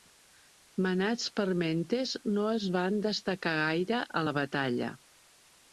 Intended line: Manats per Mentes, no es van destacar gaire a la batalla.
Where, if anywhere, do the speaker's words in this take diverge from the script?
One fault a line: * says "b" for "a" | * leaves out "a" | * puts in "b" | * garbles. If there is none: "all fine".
all fine